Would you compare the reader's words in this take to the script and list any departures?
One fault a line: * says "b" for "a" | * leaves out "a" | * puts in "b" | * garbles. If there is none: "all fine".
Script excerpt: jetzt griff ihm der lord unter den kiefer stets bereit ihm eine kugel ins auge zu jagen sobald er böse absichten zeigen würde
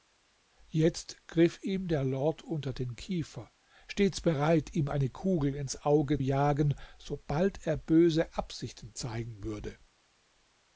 * leaves out "zu"